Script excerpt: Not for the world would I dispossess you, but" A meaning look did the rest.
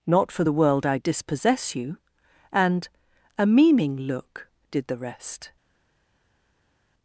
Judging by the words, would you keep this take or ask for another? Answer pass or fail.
fail